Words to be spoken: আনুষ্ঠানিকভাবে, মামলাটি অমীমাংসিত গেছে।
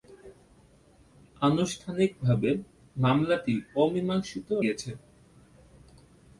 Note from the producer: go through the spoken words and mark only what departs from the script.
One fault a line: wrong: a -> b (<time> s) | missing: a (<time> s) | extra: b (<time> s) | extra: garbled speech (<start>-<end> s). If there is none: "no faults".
no faults